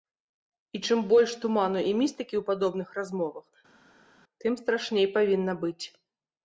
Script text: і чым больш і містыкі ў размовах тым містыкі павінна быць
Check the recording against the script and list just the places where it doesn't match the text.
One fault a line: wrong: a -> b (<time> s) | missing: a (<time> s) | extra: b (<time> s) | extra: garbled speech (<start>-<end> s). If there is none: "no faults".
extra: туману (1.4 s)
extra: падобных (2.5 s)
wrong: містыкі -> страшней (4.6 s)